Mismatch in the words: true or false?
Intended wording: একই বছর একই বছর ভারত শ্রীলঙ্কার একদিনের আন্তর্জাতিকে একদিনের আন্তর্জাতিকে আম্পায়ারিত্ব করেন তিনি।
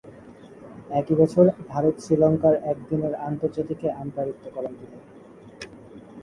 true